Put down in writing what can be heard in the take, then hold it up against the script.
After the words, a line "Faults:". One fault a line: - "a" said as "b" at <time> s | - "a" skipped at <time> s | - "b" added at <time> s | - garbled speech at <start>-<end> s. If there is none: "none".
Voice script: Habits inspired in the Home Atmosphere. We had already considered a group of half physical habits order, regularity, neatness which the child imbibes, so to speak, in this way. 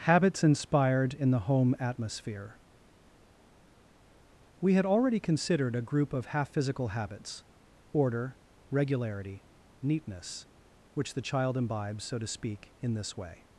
Habits inspired in the Home Atmosphere. We had already considered a group of half physical habits order, regularity, neatness which the child imbibes, so to speak, in this way.
Faults:
none